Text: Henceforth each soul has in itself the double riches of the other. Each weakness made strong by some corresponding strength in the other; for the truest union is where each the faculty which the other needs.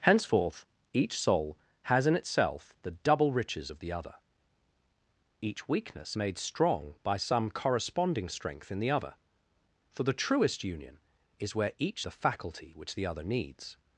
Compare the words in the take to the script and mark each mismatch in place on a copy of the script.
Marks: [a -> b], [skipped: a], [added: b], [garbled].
Henceforth each soul has in itself the double riches of the other. Each weakness made strong by some corresponding strength in the other; for the truest union is where each the faculty which the other needs.